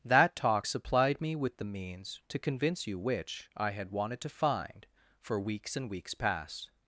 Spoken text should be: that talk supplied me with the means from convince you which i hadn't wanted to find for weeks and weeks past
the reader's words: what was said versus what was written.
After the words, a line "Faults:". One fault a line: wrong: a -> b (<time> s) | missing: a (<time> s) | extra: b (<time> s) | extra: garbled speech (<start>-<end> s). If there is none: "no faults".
that talk supplied me with the means to convince you which i had wanted to find for weeks and weeks past
Faults:
wrong: from -> to (2.3 s)
wrong: hadn't -> had (3.7 s)